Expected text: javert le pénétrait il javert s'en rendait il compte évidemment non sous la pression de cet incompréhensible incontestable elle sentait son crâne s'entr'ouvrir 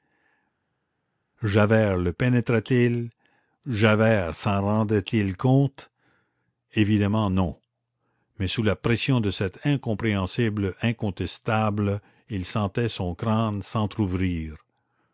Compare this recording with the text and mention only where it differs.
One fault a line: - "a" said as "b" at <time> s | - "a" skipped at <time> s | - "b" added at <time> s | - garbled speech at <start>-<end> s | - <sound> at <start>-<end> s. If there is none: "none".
- "mais" added at 8.4 s
- "elle" said as "il" at 12.3 s